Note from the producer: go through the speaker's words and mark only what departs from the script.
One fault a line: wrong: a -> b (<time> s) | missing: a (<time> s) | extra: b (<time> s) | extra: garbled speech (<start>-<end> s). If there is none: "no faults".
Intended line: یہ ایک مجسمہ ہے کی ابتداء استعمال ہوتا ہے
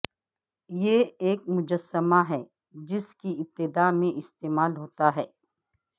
extra: جس (2.9 s)
extra: میں (3.9 s)